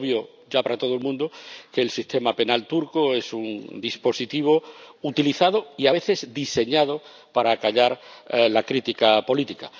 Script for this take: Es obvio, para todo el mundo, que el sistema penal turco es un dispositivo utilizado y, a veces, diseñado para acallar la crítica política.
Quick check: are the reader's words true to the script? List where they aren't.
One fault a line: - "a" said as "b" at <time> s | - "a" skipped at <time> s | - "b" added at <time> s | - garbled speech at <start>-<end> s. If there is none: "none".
- "ya" added at 0.5 s